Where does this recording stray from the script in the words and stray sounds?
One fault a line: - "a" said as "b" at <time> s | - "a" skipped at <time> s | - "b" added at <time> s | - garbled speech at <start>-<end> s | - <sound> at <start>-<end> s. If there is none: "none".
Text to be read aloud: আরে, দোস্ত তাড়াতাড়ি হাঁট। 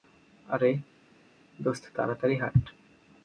none